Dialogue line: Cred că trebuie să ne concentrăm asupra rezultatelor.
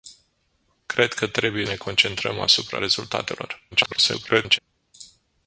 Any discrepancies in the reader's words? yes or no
yes